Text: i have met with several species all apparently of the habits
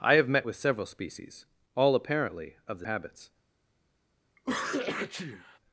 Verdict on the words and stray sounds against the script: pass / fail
fail